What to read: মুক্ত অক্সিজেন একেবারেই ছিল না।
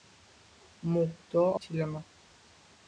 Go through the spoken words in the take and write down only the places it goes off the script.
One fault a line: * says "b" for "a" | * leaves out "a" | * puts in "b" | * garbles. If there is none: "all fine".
* leaves out "অক্সিজেন একেবারেই"